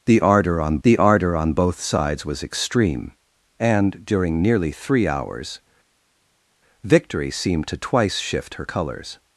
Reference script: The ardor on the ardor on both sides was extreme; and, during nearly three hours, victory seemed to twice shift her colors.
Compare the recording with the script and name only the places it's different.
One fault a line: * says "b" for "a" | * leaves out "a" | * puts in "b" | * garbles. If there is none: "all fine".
all fine